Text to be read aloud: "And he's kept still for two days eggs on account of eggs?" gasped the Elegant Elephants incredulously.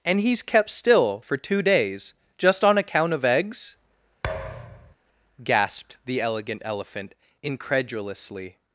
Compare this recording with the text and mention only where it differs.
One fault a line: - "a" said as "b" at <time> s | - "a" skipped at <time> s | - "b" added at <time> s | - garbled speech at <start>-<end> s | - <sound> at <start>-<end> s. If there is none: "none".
- "eggs" said as "just" at 2.4 s
- thud at 4.2-5.0 s
- "Elephants" said as "Elephant" at 6.6 s